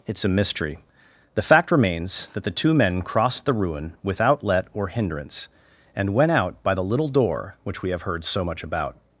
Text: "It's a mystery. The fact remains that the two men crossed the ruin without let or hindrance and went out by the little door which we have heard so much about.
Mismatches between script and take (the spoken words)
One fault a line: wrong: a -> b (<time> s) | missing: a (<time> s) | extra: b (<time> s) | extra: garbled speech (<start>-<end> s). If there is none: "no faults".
no faults